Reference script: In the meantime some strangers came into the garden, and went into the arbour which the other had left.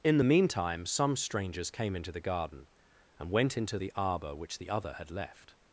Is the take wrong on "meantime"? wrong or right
right